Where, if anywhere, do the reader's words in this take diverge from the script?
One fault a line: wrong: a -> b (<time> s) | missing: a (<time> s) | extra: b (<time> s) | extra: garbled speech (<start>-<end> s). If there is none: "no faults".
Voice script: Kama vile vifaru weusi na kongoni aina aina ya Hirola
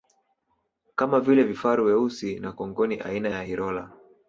missing: aina (3.3 s)